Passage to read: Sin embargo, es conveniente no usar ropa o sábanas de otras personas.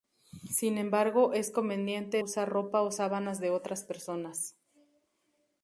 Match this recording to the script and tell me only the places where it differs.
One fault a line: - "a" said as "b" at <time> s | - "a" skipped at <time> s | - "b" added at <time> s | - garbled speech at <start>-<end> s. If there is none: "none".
- "no" skipped at 2.2 s